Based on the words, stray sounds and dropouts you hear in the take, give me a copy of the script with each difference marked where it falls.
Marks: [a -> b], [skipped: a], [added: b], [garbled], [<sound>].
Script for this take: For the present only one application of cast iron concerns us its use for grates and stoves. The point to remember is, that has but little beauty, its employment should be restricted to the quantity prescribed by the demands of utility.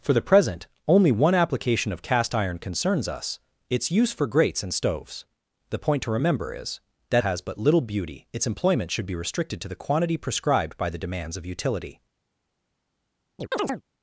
For the present only one application of cast iron concerns us its use for grates and stoves. The point to remember is, that has but little beauty, its employment should be restricted to the quantity prescribed by the demands of utility. [chirp]